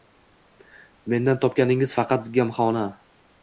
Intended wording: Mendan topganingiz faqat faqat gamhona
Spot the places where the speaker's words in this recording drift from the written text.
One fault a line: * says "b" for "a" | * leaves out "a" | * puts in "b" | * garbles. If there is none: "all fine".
* leaves out "faqat"